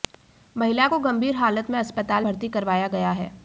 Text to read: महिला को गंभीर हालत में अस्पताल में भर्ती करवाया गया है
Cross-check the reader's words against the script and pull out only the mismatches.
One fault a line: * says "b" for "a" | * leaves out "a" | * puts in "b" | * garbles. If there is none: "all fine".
* leaves out "में"